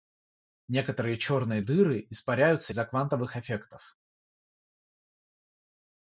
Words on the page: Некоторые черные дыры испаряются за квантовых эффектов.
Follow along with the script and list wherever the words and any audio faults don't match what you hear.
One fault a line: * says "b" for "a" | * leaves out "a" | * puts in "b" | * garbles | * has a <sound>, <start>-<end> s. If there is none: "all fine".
all fine